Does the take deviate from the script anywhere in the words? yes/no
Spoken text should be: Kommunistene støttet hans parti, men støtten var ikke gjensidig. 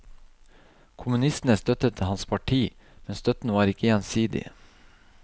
no